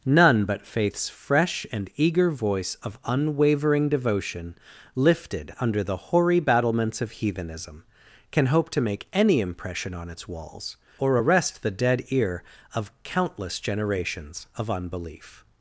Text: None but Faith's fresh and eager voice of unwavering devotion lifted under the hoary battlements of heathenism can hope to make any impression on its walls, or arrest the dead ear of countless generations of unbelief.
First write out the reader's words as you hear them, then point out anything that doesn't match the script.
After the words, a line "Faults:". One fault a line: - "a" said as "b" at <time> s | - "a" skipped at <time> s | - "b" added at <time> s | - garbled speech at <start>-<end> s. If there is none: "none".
None but Faith's fresh and eager voice of unwavering devotion lifted under the hoary battlements of heathenism can hope to make any impression on its walls, or arrest the dead ear of countless generations of unbelief.
Faults:
none